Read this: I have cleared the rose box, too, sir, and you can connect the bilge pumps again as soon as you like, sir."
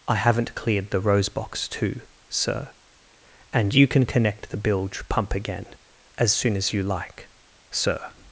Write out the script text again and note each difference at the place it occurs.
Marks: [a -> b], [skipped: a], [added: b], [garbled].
I [have -> haven't] cleared the rose box, too, sir, and you can connect the bilge [pumps -> pump] again as soon as you like, sir."